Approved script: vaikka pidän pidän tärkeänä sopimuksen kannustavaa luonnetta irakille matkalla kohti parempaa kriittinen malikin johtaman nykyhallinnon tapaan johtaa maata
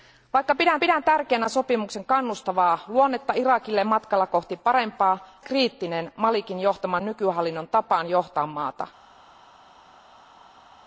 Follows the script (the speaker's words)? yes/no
yes